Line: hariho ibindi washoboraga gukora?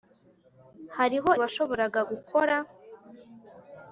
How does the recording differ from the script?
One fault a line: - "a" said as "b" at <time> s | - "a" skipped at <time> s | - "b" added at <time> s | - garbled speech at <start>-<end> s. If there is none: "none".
- "ibindi" skipped at 1.3 s